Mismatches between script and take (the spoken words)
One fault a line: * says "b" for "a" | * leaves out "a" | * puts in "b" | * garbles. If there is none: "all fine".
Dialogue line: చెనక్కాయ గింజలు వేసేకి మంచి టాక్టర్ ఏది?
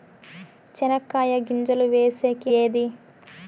* leaves out "మంచి టాక్టర్"